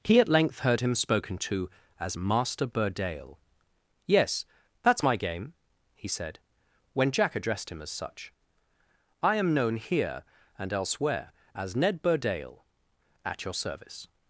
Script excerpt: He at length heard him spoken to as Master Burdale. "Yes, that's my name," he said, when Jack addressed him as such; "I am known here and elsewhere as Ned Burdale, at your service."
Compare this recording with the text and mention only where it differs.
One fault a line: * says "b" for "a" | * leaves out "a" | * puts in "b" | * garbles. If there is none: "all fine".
* says "game" for "name"